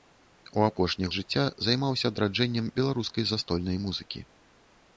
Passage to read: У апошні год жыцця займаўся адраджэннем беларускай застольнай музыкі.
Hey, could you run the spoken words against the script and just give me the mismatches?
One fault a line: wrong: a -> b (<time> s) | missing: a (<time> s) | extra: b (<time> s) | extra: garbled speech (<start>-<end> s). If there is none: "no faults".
missing: год (1.1 s)